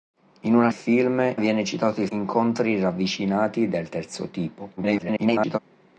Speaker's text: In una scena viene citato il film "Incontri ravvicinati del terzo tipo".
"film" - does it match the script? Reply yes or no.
no